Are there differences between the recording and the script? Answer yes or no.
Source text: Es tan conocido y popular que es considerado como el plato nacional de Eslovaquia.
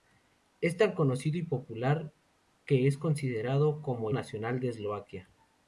yes